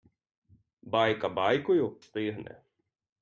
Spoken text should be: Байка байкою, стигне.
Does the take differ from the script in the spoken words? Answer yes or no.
no